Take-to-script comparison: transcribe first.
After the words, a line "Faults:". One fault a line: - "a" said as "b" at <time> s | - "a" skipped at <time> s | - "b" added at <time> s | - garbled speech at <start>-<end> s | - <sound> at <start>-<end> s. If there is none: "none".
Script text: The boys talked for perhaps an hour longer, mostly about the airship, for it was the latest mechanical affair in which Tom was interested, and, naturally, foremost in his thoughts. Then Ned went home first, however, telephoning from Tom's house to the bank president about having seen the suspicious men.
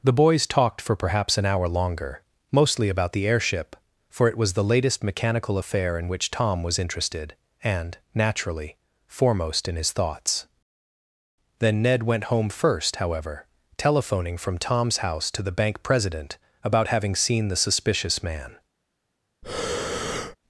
The boys talked for perhaps an hour longer, mostly about the airship, for it was the latest mechanical affair in which Tom was interested, and, naturally, foremost in his thoughts. Then Ned went home first, however, telephoning from Tom's house to the bank president about having seen the suspicious man.
Faults:
- "men" said as "man" at 18.2 s
- breath at 19.4-20.4 s